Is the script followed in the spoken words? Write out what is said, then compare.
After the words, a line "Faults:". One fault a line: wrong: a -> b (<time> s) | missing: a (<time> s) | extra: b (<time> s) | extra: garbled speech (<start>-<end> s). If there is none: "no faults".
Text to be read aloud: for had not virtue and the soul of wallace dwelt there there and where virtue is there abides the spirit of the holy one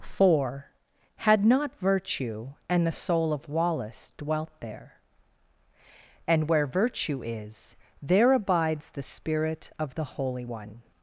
for had not virtue and the soul of wallace dwelt there and where virtue is there abides the spirit of the holy one
Faults:
missing: there (5.0 s)